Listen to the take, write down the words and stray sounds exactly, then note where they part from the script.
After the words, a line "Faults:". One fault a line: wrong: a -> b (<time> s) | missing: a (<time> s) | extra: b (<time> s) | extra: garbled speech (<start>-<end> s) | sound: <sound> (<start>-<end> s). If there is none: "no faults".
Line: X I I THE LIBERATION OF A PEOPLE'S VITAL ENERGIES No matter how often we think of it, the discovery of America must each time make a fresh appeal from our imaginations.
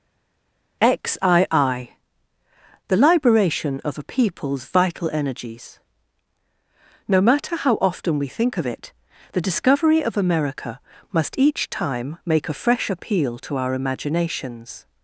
X I I THE LIBERATION OF A PEOPLE'S VITAL ENERGIES No matter how often we think of it, the discovery of America must each time make a fresh appeal to our imaginations.
Faults:
wrong: from -> to (13.4 s)